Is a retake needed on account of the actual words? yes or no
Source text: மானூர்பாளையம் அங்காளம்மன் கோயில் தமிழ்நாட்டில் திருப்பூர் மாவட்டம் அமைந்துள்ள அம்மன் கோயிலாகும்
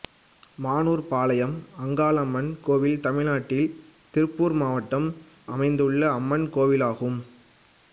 no